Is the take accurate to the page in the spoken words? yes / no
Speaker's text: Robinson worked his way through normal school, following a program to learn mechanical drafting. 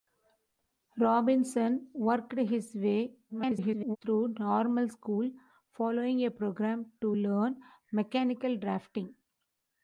no